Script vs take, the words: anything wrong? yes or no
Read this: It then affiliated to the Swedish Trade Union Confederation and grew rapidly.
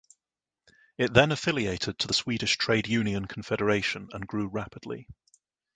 no